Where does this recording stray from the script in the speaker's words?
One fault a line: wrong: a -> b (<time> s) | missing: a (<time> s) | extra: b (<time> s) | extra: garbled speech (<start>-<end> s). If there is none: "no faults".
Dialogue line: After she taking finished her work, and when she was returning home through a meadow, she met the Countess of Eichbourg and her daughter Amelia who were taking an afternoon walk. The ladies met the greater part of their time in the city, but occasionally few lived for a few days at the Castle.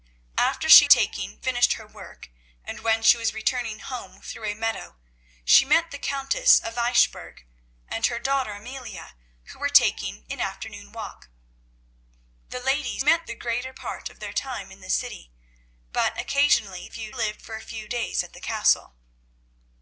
no faults